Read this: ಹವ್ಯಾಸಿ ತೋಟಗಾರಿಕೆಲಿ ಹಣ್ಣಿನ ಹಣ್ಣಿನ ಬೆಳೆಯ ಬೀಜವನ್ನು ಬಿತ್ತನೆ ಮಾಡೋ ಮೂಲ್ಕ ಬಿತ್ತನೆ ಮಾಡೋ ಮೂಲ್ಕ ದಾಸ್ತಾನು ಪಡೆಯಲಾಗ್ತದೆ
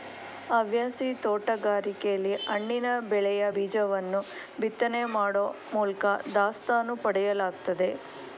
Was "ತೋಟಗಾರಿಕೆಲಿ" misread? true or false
false